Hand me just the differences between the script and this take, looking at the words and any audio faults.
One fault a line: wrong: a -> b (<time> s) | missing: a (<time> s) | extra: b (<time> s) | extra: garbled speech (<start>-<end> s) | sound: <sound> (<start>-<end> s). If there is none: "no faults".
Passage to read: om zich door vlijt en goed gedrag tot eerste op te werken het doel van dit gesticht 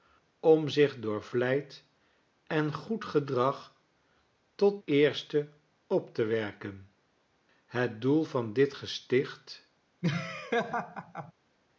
sound: laugh (10.0-11.3 s)